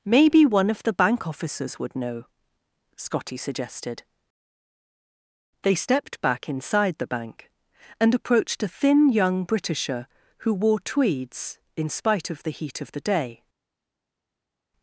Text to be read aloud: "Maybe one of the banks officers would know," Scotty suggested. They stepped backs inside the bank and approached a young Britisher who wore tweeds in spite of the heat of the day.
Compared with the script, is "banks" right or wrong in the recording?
wrong